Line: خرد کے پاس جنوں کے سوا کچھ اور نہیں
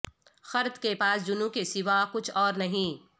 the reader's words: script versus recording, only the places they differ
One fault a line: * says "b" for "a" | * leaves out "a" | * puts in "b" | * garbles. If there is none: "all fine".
all fine